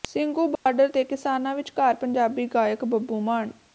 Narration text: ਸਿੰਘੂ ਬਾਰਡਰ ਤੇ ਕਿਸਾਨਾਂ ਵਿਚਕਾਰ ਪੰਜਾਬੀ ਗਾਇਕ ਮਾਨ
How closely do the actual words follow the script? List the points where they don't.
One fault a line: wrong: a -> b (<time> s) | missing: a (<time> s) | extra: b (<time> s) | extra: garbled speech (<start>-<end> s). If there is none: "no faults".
extra: ਬੱਬੂ (2.8 s)